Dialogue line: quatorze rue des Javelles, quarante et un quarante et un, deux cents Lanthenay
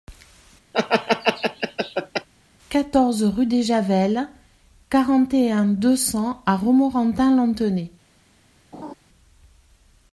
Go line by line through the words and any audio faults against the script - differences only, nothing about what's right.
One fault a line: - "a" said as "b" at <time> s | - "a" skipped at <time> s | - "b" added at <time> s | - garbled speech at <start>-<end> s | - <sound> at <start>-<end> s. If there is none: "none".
- laugh at 0.7-2.3 s
- "quarante et un deux cents" said as "deux cents à Romorantin" at 5.7 s
- laugh at 8.7-8.9 s